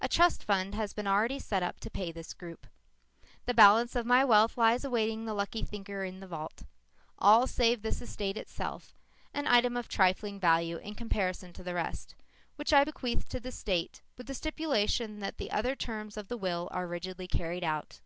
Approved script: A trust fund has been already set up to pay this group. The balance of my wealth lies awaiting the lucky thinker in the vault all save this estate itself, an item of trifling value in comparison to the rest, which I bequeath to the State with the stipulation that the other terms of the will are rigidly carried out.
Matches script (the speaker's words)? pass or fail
pass